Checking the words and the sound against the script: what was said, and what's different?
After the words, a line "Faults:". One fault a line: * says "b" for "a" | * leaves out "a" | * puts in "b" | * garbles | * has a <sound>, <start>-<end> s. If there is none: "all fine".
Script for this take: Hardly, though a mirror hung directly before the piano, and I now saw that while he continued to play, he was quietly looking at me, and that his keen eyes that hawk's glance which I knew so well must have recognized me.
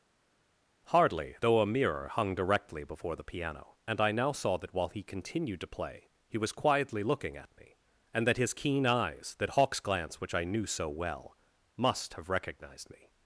Hardly, though a mirror hung directly before the piano, and I now saw that while he continued to play, he was quietly looking at me, and that his keen eyes that hawk's glance which I knew so well must have recognized me.
Faults:
all fine